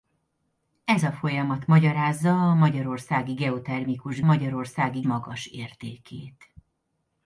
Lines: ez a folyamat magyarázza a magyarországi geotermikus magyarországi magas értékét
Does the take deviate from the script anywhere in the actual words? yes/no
no